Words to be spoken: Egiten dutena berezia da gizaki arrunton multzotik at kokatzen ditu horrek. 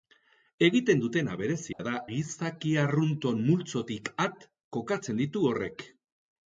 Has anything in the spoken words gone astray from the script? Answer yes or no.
no